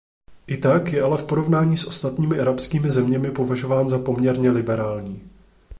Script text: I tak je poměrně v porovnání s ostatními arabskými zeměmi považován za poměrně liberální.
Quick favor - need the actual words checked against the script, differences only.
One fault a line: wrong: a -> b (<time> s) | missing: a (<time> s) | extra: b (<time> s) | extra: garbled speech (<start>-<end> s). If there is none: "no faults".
wrong: poměrně -> ale (1.0 s)